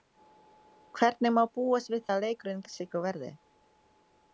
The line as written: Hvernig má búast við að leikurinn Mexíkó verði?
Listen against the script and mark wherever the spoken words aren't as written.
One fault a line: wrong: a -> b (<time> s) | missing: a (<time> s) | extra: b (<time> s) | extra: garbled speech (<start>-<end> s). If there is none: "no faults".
no faults